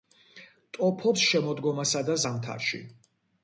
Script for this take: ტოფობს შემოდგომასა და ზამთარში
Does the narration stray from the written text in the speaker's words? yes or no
no